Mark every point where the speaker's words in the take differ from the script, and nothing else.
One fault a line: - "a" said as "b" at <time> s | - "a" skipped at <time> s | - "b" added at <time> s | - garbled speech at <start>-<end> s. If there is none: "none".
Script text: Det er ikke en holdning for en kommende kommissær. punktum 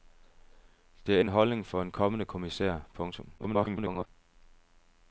- "ikke" skipped at 1.2 s
- garbled speech at 3.4-4.1 s